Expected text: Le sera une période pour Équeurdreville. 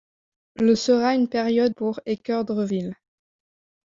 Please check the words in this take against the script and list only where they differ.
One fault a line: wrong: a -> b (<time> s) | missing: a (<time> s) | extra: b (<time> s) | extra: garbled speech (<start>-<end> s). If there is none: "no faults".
no faults